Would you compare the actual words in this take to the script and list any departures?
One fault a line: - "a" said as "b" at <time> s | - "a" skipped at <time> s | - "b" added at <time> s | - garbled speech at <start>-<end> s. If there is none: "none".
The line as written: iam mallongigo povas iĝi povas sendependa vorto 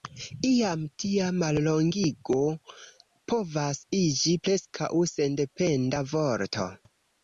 - "tia" added at 1.0 s
- "povas" said as "preskaŭ" at 4.5 s